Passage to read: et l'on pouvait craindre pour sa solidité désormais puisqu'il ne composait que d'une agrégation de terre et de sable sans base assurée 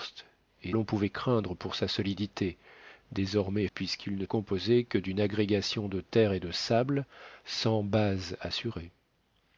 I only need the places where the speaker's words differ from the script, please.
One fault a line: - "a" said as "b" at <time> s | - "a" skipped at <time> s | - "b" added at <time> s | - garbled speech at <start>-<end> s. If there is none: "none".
none